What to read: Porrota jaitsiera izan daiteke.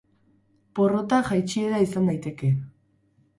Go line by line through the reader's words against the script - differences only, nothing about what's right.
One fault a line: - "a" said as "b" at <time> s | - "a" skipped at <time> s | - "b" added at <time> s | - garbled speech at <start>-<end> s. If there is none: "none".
none